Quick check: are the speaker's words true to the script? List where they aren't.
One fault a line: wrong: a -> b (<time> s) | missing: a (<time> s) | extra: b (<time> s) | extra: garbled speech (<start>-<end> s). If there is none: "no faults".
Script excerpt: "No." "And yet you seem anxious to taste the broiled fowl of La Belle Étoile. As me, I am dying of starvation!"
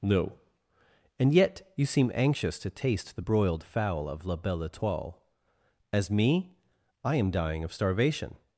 no faults